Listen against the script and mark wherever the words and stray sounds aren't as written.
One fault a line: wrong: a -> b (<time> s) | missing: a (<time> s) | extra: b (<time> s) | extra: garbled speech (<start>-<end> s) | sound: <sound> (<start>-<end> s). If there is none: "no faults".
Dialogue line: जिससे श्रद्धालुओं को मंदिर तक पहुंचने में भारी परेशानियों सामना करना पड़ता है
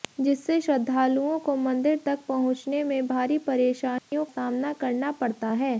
sound: dropout (4.0-4.1 s)